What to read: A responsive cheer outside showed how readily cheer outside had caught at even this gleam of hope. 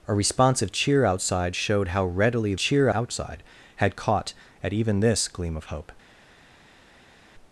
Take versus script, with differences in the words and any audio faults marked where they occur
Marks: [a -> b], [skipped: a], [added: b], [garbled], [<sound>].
A responsive cheer outside showed how readily cheer outside had caught at even this gleam of hope.